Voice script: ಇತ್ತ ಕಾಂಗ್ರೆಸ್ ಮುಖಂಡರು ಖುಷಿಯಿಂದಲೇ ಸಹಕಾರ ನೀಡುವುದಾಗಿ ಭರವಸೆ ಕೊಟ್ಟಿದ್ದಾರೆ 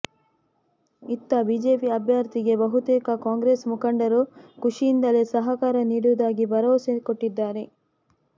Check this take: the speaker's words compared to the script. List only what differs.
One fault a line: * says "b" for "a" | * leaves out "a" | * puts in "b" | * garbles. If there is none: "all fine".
* puts in "ಬಿಜೆಪಿ ಅಭ್ಯರ್ಥಿಗೆ ಬಹುತೇಕ"